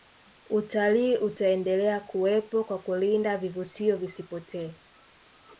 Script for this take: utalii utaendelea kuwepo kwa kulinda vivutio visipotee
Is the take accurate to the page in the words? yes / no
yes